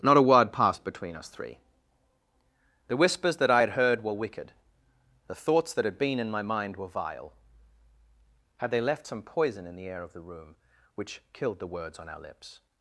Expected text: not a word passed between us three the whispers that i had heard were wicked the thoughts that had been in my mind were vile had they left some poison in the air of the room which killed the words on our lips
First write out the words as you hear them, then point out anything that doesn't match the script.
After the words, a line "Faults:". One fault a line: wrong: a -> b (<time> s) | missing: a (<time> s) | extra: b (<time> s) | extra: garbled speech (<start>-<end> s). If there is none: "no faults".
not a word passed between us three the whispers that i had heard were wicked the thoughts that had been in my mind were vile had they left some poison in the air of the room which killed the words on our lips
Faults:
no faults